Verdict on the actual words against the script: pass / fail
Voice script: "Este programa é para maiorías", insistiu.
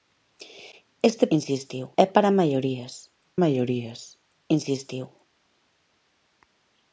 fail